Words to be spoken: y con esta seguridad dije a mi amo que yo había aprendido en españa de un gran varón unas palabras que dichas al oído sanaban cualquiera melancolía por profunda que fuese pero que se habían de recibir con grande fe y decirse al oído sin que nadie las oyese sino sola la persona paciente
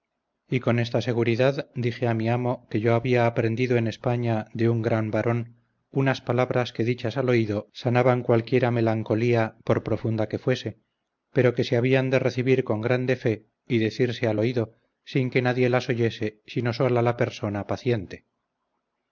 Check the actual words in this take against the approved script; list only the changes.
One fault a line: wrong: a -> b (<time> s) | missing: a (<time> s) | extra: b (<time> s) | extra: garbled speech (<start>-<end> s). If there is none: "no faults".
no faults